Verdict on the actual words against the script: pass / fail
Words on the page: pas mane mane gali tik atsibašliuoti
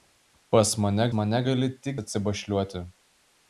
pass